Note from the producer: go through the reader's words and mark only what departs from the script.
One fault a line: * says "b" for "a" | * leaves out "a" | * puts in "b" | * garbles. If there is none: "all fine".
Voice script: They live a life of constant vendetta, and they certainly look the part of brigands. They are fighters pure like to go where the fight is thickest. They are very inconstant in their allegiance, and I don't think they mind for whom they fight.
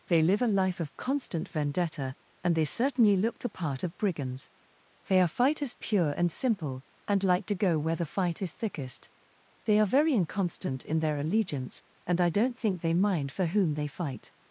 * puts in "and simple and"